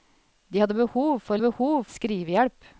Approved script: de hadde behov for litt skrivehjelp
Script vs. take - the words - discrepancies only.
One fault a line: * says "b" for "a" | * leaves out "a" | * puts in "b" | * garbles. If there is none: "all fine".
* says "behov" for "litt"